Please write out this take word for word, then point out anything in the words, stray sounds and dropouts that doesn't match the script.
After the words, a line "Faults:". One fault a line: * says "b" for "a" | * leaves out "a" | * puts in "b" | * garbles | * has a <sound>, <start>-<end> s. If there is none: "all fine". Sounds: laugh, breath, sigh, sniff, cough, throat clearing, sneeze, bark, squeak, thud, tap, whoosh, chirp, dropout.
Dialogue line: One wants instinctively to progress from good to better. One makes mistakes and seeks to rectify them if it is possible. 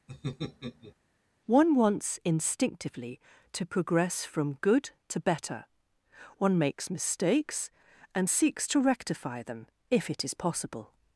One wants instinctively to progress from good to better. One makes mistakes and seeks to rectify them if it is possible.
Faults:
* has a laugh, 0.1-0.9 s